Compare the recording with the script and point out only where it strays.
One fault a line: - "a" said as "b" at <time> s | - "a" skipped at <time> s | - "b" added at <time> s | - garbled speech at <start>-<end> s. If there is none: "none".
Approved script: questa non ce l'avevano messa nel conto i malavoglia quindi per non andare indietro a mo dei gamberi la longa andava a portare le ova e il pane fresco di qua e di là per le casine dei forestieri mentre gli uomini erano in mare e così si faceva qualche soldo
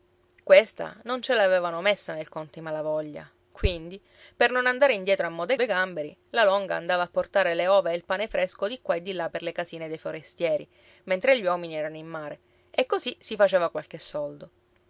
- "dei" added at 5.5 s